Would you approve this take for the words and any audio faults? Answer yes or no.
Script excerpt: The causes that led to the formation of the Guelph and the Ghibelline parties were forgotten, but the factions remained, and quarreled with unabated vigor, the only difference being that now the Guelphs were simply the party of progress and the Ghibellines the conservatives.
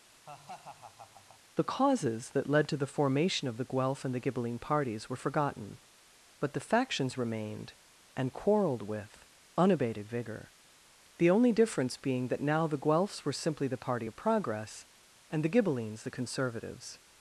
no